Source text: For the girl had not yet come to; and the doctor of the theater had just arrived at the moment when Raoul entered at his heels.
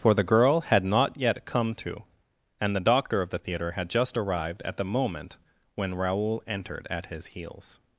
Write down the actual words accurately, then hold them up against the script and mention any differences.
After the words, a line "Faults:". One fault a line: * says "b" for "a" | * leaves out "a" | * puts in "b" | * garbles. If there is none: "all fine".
For the girl had not yet come to; and the doctor of the theater had just arrived at the moment when Raoul entered at his heels.
Faults:
all fine